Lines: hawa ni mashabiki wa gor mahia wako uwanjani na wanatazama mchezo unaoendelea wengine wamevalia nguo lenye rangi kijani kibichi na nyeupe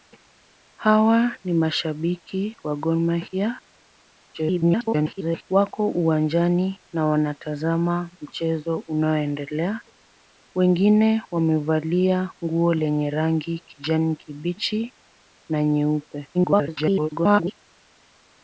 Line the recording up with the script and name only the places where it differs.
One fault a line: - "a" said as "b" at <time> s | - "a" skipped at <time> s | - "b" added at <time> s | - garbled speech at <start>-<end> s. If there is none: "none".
- garbled speech at 4.3-5.4 s
- garbled speech at 16.3-17.5 s